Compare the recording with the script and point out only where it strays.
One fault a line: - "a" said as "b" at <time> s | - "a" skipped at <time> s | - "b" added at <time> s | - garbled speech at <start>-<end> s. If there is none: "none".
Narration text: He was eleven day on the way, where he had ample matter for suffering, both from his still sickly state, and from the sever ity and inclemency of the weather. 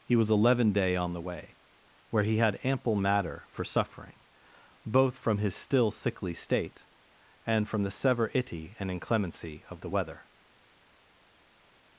none